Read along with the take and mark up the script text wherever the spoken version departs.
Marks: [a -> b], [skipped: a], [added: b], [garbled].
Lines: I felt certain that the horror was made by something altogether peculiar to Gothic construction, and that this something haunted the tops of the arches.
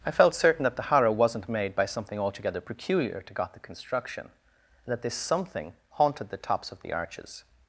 I felt certain that the horror [was -> wasn't] made by something altogether peculiar to Gothic construction, and that this something haunted the tops of the arches.